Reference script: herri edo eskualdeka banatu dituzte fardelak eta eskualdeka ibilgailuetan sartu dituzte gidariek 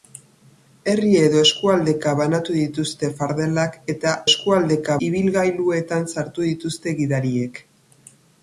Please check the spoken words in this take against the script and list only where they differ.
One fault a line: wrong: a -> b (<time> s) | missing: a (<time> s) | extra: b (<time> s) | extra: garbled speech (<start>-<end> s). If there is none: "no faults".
no faults